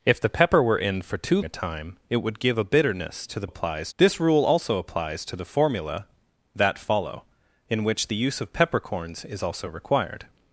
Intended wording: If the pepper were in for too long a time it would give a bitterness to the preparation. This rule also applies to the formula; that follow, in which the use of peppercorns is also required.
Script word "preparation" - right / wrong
wrong